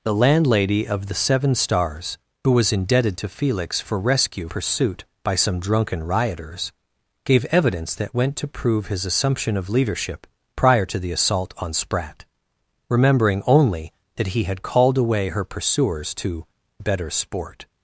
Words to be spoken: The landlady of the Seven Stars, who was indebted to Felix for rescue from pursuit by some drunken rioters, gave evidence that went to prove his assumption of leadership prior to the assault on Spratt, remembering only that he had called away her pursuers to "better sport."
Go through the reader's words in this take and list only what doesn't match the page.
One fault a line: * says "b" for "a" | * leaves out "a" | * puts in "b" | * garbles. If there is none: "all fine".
* leaves out "from"